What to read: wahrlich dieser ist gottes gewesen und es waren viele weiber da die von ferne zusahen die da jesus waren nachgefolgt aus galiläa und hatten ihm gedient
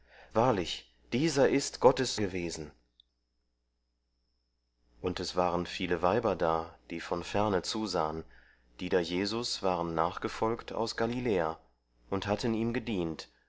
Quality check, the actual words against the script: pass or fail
pass